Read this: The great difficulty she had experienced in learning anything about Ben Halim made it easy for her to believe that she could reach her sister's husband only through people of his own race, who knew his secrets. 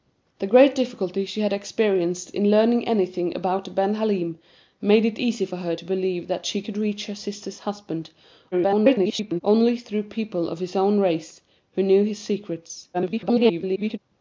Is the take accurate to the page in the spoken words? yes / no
no